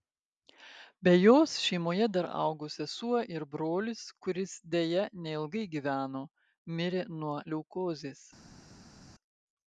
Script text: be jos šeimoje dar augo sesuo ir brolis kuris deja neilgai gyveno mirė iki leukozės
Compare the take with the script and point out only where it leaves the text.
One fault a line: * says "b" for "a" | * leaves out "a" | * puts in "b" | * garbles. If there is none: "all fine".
* says "nuo" for "iki"